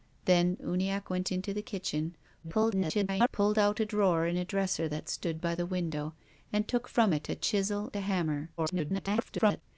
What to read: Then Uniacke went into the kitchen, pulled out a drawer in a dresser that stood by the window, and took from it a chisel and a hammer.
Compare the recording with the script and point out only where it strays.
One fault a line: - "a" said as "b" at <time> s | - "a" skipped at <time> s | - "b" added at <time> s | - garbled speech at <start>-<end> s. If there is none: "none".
- garbled speech at 2.4-3.3 s
- "and" skipped at 7.9 s
- garbled speech at 8.6-9.6 s